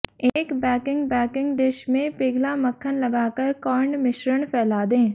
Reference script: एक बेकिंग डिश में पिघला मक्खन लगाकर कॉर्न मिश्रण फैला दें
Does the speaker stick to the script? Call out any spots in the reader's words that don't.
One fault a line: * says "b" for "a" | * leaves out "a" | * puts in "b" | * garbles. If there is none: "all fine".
* puts in "बेकिंग"